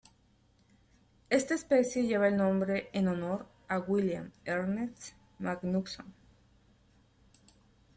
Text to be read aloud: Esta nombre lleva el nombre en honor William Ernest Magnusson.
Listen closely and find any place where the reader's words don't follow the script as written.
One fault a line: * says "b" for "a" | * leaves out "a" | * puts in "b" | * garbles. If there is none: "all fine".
* says "especie" for "nombre"
* puts in "a"